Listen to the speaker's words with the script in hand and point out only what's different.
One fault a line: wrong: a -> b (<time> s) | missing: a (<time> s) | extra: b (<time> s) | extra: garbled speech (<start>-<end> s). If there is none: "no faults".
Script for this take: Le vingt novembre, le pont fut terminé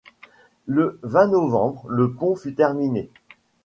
no faults